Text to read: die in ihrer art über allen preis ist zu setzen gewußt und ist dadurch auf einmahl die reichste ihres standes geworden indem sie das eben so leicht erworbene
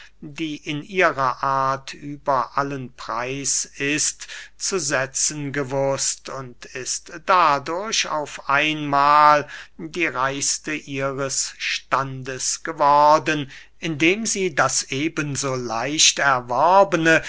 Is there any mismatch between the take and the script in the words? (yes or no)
no